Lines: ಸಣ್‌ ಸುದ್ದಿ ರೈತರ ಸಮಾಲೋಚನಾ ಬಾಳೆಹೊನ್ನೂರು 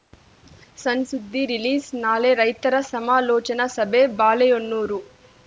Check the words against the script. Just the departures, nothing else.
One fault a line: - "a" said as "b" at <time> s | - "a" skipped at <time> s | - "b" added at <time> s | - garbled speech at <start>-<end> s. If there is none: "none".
- "ರಿಲೀಸ್‌ನಾಳೆ" added at 1.5 s
- "ಸಭೆ" added at 3.8 s